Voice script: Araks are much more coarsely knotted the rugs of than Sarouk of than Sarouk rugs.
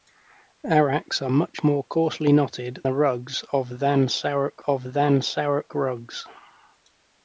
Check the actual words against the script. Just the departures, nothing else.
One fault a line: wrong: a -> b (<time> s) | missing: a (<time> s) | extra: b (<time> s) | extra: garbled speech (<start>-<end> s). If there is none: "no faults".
no faults